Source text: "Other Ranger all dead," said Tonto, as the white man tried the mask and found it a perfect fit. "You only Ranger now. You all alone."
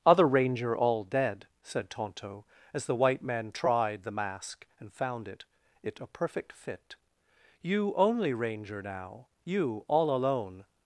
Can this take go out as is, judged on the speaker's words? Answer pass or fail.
fail